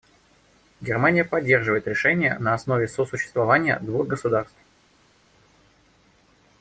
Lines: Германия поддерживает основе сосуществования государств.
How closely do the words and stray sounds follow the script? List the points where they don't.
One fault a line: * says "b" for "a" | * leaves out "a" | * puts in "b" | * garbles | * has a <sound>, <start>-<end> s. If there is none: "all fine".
* puts in "решение на"
* puts in "двух"